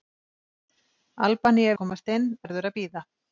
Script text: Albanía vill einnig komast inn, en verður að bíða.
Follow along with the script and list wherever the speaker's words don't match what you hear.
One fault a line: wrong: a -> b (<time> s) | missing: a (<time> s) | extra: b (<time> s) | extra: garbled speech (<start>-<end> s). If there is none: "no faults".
missing: vill einnig (1.8 s)
missing: en (2.3 s)